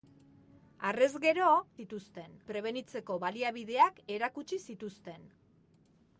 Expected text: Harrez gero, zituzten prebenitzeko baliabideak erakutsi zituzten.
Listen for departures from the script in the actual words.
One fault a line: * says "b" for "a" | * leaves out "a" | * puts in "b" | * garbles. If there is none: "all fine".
all fine